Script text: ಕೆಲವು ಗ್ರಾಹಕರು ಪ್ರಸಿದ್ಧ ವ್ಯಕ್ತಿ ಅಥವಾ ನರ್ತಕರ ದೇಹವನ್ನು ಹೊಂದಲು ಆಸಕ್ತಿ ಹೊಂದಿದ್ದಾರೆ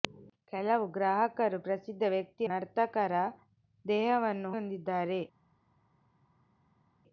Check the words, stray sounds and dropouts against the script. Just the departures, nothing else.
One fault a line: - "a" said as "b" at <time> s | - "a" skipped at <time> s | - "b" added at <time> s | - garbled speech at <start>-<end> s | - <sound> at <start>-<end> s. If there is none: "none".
- "ಅಥವಾ" skipped at 2.5 s
- "ಹೊಂದಲು ಆಸಕ್ತಿ" skipped at 4.5 s